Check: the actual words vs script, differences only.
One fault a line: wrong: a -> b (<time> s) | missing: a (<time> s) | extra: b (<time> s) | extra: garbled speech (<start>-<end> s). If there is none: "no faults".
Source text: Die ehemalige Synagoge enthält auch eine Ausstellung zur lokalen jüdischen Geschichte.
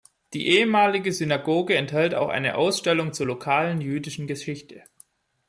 no faults